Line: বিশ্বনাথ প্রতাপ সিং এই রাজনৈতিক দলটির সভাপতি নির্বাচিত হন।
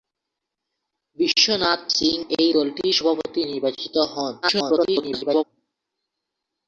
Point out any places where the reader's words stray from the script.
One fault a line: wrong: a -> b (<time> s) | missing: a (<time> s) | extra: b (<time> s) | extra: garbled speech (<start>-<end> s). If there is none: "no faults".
missing: প্রতাপ (1.8 s)
missing: রাজনৈতিক (2.5 s)
extra: garbled speech (4.4-5.4 s)